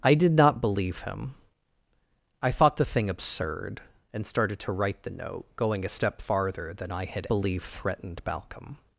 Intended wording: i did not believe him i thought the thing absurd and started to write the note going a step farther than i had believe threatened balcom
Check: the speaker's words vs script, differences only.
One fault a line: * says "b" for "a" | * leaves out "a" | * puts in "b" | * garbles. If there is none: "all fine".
all fine